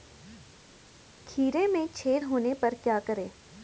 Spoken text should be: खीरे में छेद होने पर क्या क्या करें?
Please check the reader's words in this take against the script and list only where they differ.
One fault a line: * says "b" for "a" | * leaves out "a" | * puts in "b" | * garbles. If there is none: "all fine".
* leaves out "क्या"